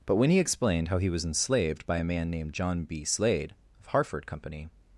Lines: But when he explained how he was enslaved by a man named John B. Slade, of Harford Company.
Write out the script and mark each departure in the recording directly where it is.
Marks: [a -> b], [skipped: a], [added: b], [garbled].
But when he explained how he was enslaved by a man named John B. Slade, of Harford Company.